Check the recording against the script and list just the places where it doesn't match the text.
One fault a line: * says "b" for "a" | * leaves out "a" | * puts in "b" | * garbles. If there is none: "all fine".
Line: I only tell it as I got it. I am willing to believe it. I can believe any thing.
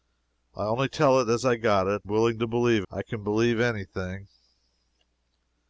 * leaves out "I am"
* leaves out "it"